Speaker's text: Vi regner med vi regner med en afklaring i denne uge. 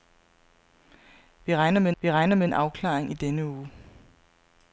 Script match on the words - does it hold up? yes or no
yes